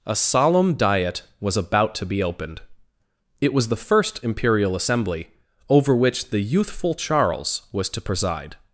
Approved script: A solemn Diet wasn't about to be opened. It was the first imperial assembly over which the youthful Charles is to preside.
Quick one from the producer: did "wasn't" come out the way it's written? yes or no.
no